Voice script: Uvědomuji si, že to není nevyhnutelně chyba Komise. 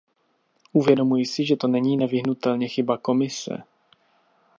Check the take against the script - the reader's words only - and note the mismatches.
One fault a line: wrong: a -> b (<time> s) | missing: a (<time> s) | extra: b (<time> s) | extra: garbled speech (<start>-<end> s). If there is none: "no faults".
no faults